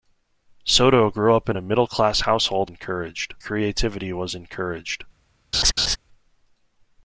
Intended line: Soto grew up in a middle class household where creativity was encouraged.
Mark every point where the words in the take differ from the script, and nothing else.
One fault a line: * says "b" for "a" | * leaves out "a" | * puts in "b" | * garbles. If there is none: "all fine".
* says "encouraged" for "where"